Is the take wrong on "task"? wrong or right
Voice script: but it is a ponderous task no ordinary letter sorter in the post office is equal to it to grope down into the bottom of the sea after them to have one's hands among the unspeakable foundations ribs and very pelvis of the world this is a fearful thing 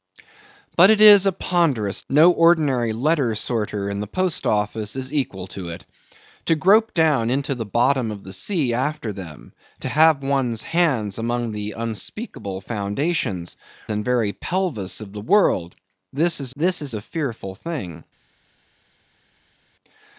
wrong